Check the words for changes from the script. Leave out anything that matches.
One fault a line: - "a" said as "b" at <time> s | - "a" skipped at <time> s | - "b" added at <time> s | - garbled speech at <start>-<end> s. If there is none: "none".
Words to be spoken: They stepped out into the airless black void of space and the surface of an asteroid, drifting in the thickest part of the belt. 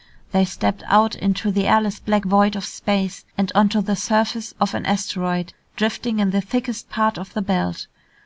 - "onto" added at 3.5 s